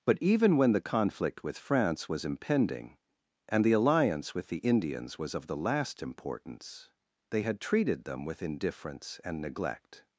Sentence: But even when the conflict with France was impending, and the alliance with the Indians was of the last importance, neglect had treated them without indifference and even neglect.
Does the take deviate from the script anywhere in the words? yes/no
yes